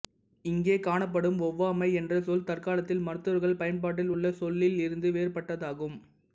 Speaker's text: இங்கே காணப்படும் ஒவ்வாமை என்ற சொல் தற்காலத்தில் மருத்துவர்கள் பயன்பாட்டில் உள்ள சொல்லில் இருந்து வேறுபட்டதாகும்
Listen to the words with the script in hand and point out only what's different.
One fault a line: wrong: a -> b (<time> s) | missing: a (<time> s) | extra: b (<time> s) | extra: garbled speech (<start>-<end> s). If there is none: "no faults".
no faults